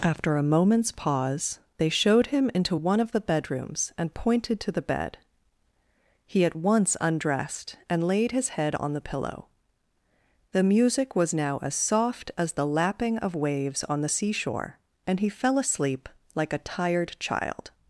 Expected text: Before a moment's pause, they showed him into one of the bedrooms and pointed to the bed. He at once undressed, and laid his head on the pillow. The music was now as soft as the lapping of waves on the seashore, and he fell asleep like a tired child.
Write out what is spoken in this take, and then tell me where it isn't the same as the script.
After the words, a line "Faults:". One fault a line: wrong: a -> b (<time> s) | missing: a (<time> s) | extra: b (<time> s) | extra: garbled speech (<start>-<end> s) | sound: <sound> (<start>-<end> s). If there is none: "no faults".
After a moment's pause, they showed him into one of the bedrooms and pointed to the bed. He at once undressed, and laid his head on the pillow. The music was now as soft as the lapping of waves on the seashore, and he fell asleep like a tired child.
Faults:
wrong: Before -> After (0.0 s)